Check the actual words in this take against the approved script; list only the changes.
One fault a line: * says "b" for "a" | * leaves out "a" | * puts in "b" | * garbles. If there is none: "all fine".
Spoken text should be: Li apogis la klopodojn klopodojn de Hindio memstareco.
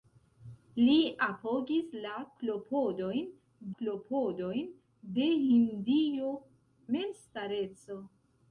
all fine